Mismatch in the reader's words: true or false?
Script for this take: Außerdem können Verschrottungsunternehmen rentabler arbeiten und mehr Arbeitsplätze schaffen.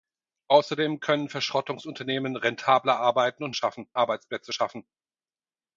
true